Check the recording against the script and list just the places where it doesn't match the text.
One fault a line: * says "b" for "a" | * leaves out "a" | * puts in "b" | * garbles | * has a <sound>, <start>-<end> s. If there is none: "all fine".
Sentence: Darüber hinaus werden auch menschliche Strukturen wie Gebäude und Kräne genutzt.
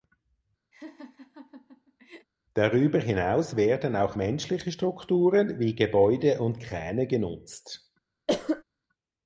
* has a laugh, 0.7-2.3 s
* has a cough, 8.3-8.6 s